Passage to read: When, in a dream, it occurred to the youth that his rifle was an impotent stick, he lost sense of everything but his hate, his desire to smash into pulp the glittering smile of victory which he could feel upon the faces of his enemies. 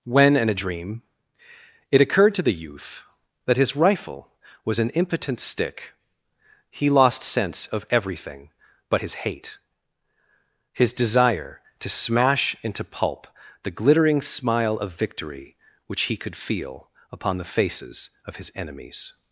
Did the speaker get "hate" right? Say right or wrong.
right